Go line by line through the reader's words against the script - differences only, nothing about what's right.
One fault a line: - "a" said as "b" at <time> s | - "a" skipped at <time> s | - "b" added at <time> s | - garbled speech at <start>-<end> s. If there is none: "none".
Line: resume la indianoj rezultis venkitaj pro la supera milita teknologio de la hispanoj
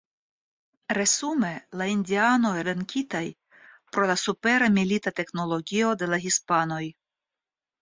- "rezultis" skipped at 2.5 s